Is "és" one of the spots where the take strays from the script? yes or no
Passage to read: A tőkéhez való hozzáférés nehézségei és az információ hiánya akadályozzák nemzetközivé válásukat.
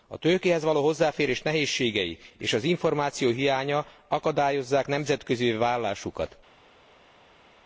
no